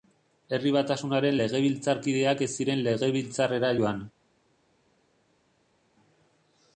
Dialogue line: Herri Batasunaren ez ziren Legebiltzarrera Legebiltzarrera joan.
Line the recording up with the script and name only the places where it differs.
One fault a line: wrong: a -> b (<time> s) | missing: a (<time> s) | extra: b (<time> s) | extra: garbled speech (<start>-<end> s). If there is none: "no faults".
extra: legebiltzarkideak (1.4 s)
missing: Legebiltzarrera (3.7 s)